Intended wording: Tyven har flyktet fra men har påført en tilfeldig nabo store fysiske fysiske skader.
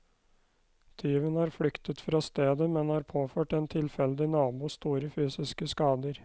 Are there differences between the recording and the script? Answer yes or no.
yes